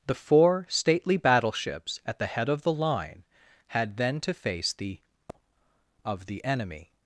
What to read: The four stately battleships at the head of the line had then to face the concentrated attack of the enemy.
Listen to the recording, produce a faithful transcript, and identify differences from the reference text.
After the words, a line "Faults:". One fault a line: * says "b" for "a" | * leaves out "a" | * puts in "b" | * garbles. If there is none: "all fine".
The four stately battleships at the head of the line had then to face the of the enemy.
Faults:
* leaves out "concentrated attack"